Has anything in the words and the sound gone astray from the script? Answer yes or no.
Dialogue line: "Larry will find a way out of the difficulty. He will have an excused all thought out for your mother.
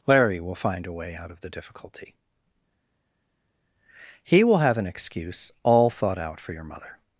yes